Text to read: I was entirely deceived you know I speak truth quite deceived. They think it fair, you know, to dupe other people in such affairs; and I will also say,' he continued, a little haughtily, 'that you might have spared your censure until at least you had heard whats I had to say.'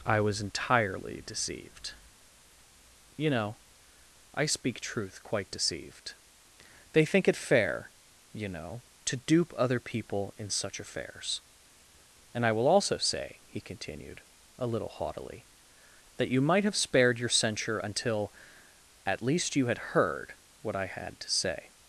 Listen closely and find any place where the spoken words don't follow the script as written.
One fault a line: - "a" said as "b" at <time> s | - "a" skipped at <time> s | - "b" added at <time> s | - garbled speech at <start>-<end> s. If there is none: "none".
- "whats" said as "what" at 20.6 s